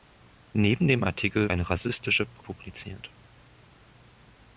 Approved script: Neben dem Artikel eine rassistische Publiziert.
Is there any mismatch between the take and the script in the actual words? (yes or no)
no